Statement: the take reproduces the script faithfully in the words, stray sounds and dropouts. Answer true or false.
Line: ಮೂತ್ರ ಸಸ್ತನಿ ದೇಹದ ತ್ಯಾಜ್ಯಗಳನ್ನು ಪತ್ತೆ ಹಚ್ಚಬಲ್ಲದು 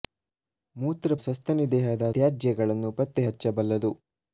true